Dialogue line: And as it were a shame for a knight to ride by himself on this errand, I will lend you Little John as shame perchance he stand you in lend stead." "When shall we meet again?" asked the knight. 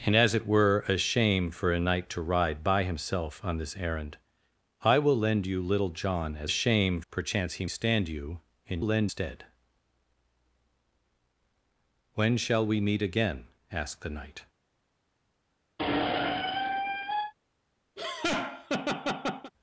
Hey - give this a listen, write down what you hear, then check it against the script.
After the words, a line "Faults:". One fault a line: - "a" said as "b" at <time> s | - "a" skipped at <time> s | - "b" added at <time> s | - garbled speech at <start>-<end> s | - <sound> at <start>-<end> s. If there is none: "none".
And as it were a shame for a knight to ride by himself on this errand, I will lend you Little John as shame perchance he stand you in lend stead." "When shall we meet again?" asked the knight.
Faults:
- squeak at 15.8-17.3 s
- laugh at 18.0-19.5 s